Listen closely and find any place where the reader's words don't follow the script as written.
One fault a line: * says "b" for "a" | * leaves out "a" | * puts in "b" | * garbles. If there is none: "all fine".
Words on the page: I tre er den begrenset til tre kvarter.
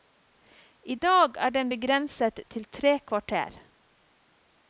* says "dag" for "tre"